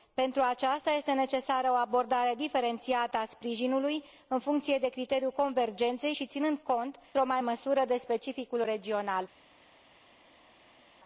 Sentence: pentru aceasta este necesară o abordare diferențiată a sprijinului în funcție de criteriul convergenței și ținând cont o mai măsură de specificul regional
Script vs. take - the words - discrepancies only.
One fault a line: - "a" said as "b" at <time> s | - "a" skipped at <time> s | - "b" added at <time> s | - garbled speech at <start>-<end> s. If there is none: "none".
none